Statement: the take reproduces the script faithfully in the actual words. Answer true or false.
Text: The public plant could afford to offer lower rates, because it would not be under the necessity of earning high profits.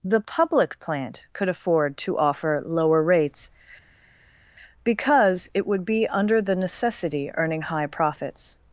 false